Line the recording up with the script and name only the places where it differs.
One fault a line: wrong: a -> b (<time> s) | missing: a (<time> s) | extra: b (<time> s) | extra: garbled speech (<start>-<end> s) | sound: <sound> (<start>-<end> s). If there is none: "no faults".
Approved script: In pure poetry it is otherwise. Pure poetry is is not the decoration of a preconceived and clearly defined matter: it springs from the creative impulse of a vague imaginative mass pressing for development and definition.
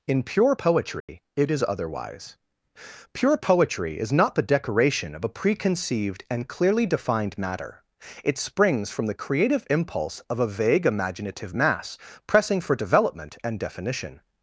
sound: dropout (1.0-1.1 s)
missing: is (4.1 s)